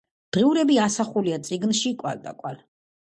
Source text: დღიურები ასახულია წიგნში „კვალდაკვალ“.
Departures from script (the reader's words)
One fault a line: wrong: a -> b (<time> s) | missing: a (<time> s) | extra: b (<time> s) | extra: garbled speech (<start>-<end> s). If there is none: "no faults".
no faults